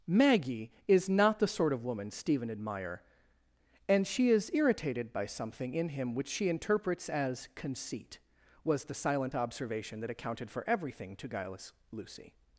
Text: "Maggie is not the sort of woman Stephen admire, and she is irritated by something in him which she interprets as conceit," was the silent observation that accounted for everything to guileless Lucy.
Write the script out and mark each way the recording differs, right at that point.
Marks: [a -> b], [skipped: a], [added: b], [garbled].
"Maggie is not the sort of woman Stephen admire, and she is irritated by something in him which she interprets as conceit," was the silent observation that accounted for everything to guileless Lucy.